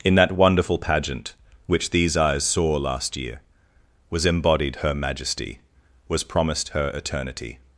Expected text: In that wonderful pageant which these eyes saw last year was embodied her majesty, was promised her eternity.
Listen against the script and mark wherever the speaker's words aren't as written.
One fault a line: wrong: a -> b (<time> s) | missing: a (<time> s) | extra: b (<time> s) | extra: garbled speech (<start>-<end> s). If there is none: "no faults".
no faults